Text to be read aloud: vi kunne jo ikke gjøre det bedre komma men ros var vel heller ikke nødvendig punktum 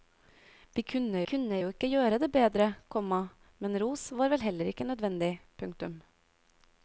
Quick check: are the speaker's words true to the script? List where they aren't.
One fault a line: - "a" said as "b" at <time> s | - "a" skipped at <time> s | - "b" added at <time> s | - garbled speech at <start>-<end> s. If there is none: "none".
- "kunne" added at 1.3 s